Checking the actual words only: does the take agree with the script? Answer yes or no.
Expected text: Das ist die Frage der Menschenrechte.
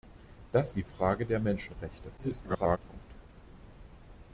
no